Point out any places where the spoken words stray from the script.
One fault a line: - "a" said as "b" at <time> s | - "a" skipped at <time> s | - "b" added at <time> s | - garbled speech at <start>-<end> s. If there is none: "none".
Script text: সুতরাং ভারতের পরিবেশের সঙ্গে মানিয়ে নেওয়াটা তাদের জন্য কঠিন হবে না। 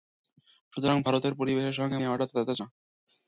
- "মানিয়ে" skipped at 2.0 s
- "জন্য কঠিন হবে" skipped at 2.6 s